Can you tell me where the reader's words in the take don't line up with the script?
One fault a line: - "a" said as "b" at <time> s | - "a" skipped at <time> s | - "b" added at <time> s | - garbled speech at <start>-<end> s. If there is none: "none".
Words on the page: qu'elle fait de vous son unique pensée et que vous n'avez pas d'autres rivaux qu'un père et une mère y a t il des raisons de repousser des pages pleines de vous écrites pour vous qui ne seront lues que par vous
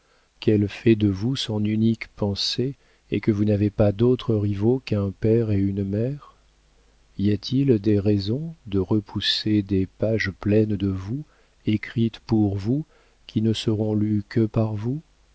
none